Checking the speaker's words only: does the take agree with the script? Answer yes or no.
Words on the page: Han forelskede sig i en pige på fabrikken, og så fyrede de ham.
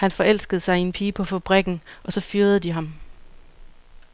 yes